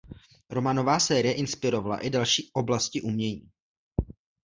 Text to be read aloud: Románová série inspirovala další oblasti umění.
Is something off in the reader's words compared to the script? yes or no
yes